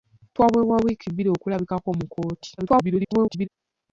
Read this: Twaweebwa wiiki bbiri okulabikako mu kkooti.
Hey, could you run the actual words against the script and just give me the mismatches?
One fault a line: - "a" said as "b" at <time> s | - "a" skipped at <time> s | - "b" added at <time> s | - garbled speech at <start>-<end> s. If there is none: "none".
- garbled speech at 2.6-3.5 s